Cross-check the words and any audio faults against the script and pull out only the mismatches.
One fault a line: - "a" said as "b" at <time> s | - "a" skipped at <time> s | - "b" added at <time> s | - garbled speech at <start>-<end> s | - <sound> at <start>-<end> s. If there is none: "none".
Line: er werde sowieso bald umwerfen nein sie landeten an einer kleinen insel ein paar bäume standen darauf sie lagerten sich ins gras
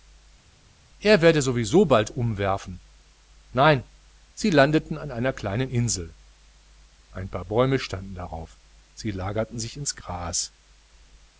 none